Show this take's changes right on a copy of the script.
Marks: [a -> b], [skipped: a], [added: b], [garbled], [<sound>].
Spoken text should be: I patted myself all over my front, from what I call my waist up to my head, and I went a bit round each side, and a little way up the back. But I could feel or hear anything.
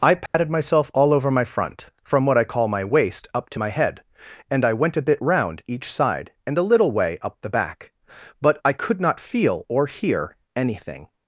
I patted [dropout] myself all over my front, from what I call my waist up to my head, and I went a bit round each side, and a little way up the back. But I could [added: not] feel or hear anything.